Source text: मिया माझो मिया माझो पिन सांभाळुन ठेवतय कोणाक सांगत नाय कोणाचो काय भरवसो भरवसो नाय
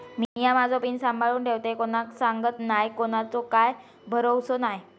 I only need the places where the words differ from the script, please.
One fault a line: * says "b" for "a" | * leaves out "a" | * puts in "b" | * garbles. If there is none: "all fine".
* leaves out "मिया माझो"
* leaves out "भरवसो"